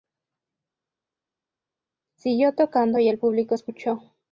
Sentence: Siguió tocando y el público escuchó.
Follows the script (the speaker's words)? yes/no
yes